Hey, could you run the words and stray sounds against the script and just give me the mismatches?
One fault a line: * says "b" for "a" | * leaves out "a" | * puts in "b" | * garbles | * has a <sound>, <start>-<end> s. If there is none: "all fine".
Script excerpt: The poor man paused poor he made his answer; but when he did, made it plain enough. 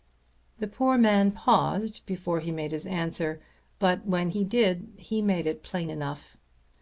* says "before" for "poor"
* puts in "he"